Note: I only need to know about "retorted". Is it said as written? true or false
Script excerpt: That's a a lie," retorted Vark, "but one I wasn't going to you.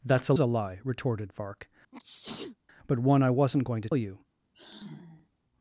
true